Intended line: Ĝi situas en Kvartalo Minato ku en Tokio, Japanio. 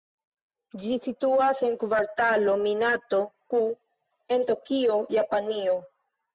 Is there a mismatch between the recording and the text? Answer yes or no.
no